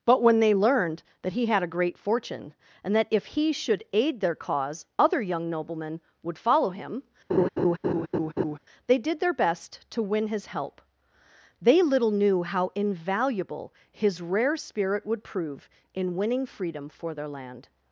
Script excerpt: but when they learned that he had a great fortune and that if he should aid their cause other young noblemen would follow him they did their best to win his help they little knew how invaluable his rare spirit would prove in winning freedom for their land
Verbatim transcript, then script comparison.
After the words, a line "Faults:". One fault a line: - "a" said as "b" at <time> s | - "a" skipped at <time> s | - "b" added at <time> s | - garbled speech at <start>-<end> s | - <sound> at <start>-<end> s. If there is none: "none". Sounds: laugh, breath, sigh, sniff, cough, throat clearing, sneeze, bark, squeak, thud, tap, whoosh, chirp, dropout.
but when they learned that he had a great fortune and that if he should aid their cause other young noblemen would follow him they did their best to win his help they little knew how invaluable his rare spirit would prove in winning freedom for their land
Faults:
- laugh at 7.3-8.6 s